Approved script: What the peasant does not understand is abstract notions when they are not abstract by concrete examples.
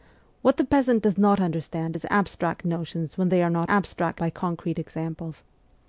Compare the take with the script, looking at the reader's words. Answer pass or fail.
pass